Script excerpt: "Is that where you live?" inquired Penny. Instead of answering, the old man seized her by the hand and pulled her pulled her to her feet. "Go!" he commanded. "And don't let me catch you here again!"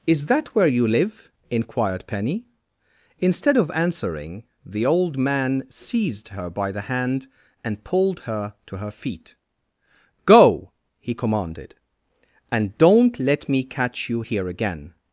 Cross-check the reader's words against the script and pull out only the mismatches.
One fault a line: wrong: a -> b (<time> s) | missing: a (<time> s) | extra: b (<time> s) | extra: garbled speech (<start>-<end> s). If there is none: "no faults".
missing: pulled her (8.6 s)